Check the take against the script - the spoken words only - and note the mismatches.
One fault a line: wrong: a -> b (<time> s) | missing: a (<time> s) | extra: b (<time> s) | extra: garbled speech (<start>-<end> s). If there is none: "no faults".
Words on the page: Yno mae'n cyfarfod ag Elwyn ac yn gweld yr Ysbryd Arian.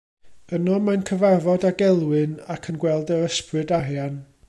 no faults